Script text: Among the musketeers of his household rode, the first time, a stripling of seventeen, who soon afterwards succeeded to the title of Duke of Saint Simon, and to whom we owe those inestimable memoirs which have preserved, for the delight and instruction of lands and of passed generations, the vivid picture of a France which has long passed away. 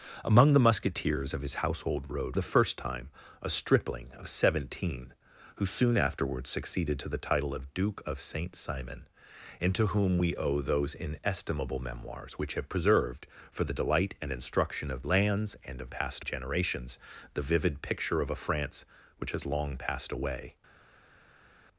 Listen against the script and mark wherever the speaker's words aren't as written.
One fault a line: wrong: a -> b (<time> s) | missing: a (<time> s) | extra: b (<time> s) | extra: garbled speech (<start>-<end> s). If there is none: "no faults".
no faults